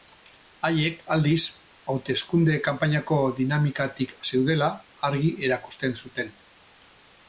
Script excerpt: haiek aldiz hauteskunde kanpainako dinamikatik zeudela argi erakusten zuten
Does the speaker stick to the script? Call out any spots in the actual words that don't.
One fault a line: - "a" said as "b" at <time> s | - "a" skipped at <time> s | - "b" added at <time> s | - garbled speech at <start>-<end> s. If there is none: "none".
none